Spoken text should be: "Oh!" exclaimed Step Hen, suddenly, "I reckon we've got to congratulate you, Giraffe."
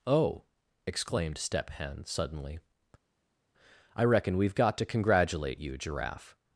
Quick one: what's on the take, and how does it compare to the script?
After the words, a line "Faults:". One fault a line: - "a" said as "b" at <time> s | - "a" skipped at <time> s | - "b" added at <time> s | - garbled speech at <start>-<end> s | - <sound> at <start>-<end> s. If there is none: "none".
"Oh!" exclaimed Step Hen, suddenly, "I reckon we've got to congratulate you, Giraffe."
Faults:
none